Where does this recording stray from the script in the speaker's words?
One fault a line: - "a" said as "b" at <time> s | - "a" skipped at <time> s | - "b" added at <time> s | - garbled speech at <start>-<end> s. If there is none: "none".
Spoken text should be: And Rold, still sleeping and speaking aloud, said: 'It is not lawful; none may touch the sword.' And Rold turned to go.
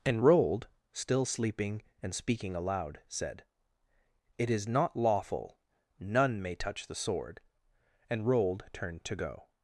none